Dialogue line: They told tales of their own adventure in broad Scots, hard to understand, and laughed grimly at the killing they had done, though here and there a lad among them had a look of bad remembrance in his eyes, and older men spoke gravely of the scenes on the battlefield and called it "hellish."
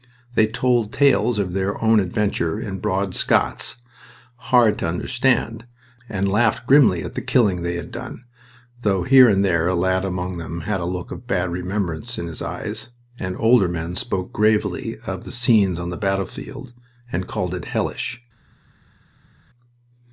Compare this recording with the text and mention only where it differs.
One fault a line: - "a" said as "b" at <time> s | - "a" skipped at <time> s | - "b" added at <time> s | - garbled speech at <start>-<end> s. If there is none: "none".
none